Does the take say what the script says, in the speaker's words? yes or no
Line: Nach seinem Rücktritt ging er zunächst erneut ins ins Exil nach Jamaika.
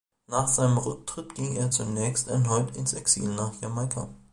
no